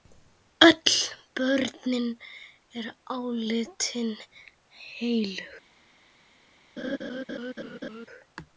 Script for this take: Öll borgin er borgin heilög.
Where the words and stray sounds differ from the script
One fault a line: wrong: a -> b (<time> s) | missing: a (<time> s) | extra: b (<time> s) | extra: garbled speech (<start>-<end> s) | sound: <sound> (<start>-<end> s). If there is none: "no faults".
wrong: borgin -> álitin (3.2 s)
sound: laugh (6.8-8.1 s)